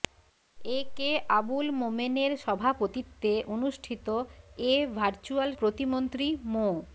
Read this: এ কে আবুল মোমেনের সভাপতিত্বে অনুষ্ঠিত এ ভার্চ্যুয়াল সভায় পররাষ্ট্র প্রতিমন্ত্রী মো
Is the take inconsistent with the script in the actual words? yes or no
yes